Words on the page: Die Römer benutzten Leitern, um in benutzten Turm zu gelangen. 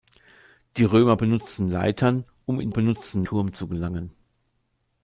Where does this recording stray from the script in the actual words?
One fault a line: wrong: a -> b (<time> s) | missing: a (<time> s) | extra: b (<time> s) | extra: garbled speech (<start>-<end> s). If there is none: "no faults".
no faults